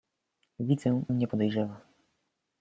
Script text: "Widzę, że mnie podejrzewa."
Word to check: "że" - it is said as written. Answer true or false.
false